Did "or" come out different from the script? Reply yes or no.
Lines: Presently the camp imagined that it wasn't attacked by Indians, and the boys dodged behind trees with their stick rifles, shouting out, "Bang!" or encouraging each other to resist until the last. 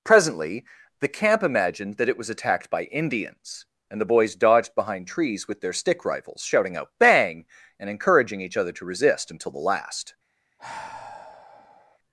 yes